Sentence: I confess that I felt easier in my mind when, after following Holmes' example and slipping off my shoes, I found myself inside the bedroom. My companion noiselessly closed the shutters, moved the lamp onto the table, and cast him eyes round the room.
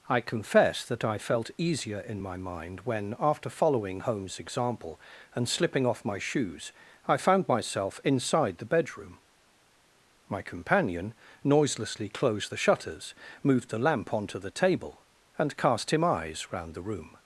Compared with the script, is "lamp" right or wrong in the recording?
right